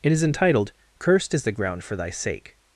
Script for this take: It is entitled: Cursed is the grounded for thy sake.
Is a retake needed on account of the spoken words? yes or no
yes